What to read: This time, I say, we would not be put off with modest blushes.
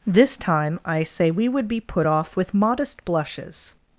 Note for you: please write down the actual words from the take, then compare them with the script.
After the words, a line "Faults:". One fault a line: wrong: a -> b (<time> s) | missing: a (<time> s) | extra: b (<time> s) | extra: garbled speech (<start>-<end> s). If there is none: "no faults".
This time, I say, we would be put off with modest blushes.
Faults:
missing: not (1.7 s)